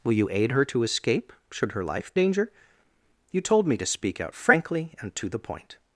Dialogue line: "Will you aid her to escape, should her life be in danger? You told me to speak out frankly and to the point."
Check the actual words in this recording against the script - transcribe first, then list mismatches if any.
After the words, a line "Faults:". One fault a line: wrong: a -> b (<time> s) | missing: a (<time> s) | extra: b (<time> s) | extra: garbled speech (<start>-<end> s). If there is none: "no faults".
"Will you aid her to escape, should her life danger? You told me to speak out frankly and to the point."
Faults:
missing: be in (2.1 s)